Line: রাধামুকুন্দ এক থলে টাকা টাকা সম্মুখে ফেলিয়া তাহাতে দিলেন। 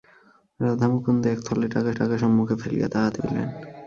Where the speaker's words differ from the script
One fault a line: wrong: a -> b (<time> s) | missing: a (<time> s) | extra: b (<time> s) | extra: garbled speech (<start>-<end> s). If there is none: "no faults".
no faults